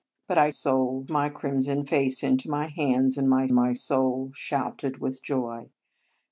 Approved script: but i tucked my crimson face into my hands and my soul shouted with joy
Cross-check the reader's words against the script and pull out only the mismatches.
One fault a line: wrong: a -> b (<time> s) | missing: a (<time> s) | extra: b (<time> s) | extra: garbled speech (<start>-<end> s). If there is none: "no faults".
wrong: tucked -> soul (0.5 s)
extra: my (3.5 s)